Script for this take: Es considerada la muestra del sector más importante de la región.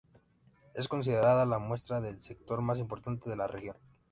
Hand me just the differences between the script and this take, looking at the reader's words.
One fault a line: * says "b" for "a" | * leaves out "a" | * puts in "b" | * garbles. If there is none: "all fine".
all fine